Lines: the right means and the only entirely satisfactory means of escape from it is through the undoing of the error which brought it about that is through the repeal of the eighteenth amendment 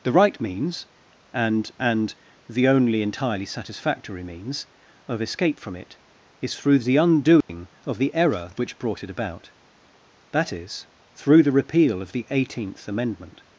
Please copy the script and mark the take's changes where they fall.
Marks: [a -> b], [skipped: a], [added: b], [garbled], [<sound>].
the right means and [added: and] the only entirely satisfactory means of escape from it is through the undoing [dropout] of the error which brought it about that is through the repeal of the eighteenth amendment